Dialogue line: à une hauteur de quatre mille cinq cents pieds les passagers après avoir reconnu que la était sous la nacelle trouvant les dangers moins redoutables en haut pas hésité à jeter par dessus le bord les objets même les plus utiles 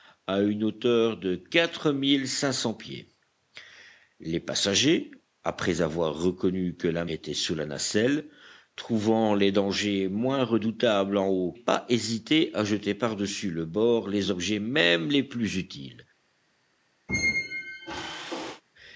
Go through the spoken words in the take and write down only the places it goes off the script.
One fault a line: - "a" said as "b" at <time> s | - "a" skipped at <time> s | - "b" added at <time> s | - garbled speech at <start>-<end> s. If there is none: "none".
none